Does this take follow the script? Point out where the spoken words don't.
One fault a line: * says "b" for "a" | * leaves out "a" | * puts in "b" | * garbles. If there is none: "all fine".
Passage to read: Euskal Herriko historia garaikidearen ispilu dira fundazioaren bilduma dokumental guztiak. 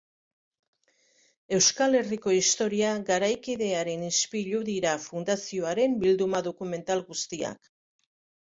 all fine